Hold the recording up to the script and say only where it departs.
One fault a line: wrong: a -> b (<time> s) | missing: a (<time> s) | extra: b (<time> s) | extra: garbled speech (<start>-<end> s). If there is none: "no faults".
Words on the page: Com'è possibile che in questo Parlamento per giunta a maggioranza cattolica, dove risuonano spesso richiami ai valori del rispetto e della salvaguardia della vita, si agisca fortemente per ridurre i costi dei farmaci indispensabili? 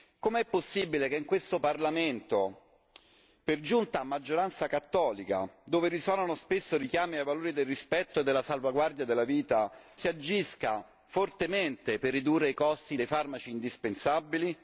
no faults